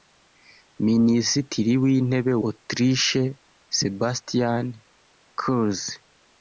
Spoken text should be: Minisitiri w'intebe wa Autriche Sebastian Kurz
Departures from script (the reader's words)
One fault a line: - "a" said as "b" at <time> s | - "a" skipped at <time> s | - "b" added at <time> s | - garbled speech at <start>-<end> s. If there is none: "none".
- "wa" skipped at 2.3 s